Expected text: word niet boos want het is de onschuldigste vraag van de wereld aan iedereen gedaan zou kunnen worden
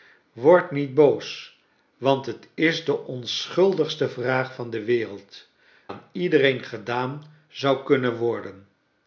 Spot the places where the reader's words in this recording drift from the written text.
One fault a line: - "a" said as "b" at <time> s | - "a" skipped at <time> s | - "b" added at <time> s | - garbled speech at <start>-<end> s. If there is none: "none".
none